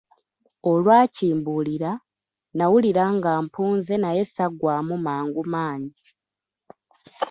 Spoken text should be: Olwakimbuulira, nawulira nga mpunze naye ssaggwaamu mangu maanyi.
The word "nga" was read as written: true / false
true